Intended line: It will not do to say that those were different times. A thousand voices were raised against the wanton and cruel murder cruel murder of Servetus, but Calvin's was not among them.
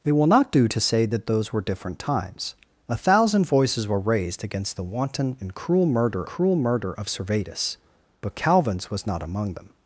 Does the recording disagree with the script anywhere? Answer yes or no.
no